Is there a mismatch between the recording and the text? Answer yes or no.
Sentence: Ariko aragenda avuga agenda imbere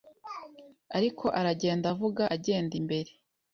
no